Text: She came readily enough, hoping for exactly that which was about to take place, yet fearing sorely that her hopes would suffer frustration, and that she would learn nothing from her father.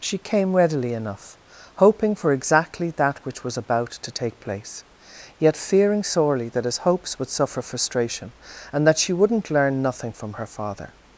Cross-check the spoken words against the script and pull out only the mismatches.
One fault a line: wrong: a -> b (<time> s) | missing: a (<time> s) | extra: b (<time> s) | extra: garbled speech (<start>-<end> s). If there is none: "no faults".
wrong: her -> his (6.7 s)
wrong: would -> wouldn't (9.1 s)